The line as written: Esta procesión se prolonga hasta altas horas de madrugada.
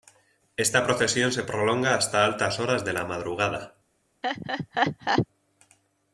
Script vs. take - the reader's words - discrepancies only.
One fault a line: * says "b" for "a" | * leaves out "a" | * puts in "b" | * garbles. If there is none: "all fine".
* puts in "la"